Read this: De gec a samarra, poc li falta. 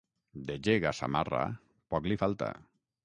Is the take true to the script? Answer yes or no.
yes